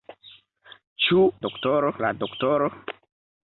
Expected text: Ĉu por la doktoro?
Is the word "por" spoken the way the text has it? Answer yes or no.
no